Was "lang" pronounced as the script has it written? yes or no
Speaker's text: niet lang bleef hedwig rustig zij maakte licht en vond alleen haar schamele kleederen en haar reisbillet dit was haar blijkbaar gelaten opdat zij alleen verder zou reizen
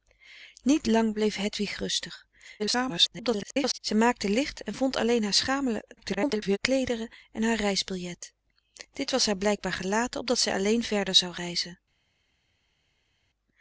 yes